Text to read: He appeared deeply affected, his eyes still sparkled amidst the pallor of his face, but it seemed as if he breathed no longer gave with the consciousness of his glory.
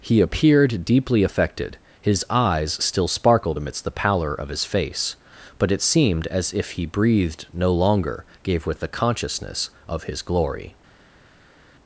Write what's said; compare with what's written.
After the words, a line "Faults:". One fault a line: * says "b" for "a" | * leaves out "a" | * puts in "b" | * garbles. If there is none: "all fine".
He appeared deeply affected, his eyes still sparkled amidst the pallor of his face, but it seemed as if he breathed no longer gave with the consciousness of his glory.
Faults:
all fine